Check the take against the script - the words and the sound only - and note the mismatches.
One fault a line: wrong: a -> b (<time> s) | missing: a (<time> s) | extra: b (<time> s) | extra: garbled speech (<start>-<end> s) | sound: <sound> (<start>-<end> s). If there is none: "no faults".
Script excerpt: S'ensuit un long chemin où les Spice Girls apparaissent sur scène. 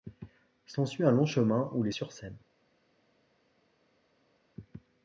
missing: Spice Girls apparaissent (1.9 s)